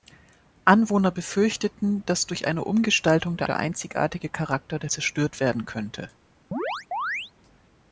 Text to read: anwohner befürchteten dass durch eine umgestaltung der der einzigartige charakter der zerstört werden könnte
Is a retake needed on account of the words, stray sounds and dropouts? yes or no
yes